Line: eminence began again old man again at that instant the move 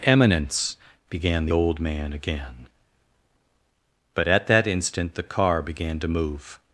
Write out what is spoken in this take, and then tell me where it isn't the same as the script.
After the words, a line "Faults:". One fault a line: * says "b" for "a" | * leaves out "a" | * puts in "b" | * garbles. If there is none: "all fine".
eminence began the old man again but at that instant the car began to move
Faults:
* says "the" for "again"
* puts in "but"
* puts in "car began to"